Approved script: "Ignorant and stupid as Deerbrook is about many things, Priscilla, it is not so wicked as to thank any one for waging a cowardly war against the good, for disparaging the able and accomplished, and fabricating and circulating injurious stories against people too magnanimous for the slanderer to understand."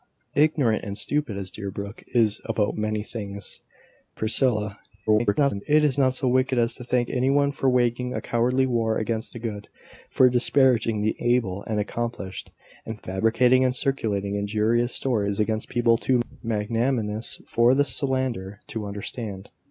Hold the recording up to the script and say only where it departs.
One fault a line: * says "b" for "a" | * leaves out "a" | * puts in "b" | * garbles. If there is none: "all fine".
* garbles